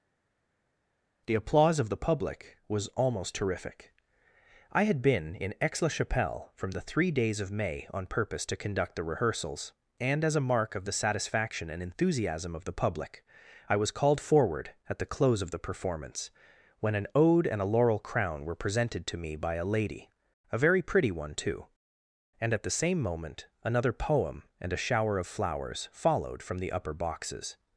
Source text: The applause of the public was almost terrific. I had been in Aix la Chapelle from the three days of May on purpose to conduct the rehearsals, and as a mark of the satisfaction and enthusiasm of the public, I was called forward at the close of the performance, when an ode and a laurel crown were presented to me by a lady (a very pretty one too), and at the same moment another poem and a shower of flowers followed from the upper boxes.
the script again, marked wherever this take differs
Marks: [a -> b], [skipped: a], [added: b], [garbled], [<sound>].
The applause of the public was almost terrific. I had been in Aix la Chapelle from the three days of May on purpose to conduct the rehearsals, and as a mark of the satisfaction and enthusiasm of the public, I was called forward at the close of the performance, when an ode and a laurel crown were presented to me by a lady (a very pretty one too), and at the same moment another poem and a shower of flowers followed from the upper boxes.